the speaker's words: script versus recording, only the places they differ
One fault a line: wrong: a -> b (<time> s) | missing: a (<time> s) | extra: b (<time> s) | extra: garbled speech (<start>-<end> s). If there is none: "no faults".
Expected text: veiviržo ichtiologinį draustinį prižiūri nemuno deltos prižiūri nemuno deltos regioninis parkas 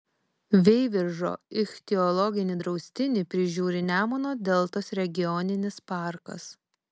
missing: prižiūri nemuno deltos (4.9 s)